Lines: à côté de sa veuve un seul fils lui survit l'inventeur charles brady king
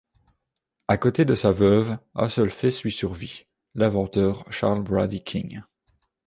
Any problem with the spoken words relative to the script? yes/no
no